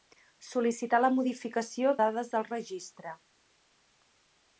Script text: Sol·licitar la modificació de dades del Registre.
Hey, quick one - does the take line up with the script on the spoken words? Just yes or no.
no